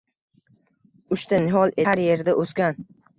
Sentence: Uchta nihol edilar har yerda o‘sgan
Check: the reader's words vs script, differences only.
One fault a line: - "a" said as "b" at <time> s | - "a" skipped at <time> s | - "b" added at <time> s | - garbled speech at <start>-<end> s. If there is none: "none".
- "edilar" skipped at 1.8 s